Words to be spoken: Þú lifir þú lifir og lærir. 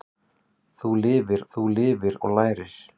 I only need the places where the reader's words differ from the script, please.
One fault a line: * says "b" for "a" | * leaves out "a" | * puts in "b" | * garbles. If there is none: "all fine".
all fine